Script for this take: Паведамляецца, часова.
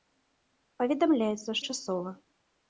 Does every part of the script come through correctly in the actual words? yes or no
yes